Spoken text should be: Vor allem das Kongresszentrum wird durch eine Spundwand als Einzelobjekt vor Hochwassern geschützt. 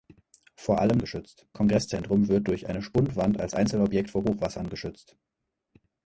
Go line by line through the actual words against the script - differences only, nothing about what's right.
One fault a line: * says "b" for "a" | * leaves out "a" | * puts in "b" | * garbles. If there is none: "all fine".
* says "geschützt" for "das"